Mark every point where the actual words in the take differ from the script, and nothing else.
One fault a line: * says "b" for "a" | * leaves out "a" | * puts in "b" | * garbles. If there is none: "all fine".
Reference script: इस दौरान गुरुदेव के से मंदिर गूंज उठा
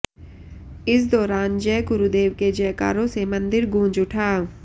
* puts in "जय"
* puts in "जयकारों"